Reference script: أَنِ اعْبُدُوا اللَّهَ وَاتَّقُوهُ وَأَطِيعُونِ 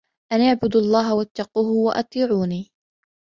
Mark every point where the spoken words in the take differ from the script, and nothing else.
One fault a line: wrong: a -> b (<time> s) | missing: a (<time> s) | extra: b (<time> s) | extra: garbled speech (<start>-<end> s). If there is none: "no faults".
no faults